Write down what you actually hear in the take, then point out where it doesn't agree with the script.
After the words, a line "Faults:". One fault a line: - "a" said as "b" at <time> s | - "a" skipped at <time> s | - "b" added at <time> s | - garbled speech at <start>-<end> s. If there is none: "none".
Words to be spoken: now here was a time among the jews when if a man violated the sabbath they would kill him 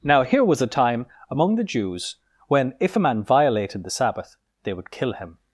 now here was a time among the jews when if a man violated the sabbath they would kill him
Faults:
none